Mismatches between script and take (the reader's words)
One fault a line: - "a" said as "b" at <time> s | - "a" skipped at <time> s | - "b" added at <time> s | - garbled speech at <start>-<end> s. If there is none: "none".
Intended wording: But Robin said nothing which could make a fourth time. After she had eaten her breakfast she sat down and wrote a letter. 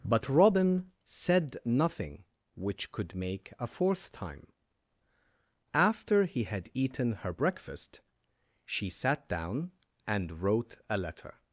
- "she" said as "he" at 6.2 s